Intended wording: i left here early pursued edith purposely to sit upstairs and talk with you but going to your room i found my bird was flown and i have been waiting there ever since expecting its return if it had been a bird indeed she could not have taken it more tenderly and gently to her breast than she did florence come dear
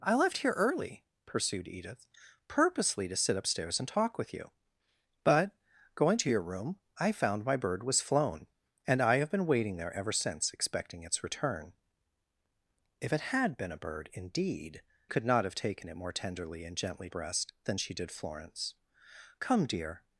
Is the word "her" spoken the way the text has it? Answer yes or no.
no